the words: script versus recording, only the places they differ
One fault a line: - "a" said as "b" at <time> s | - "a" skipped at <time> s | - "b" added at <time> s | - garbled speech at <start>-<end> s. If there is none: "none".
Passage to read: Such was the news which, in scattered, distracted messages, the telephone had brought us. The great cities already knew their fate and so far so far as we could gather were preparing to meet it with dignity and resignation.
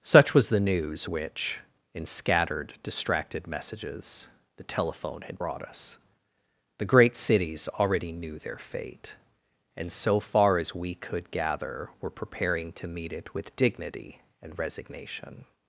- "so far" skipped at 10.6 s